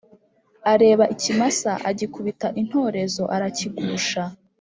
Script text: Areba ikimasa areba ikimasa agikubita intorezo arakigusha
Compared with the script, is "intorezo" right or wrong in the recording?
right